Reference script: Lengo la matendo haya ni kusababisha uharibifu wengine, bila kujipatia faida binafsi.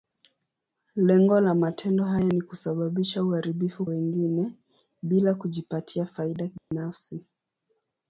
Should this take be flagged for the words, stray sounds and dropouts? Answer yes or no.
yes